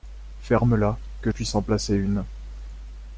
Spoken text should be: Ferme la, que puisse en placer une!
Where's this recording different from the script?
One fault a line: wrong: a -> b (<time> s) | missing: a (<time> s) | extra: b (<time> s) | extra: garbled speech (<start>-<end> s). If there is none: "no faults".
no faults